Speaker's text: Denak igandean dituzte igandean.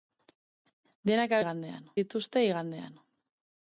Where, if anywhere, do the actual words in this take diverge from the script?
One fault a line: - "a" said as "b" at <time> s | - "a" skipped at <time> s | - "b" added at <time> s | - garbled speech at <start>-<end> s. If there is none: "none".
none